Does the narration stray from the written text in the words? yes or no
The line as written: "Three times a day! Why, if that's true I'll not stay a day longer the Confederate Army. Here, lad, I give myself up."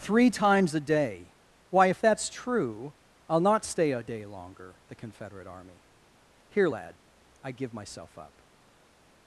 no